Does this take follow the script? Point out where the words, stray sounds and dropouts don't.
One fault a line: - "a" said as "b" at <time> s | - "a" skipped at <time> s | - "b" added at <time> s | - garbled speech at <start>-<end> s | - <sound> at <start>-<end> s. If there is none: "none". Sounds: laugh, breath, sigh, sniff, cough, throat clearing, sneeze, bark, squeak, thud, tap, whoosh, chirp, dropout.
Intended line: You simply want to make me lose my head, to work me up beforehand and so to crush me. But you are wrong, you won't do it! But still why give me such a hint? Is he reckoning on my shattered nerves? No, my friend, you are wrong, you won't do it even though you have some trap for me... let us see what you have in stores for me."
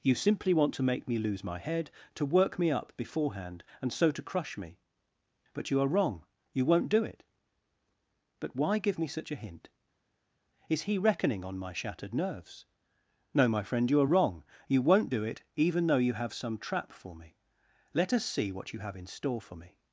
- "still" skipped at 8.6 s
- "stores" said as "store" at 19.1 s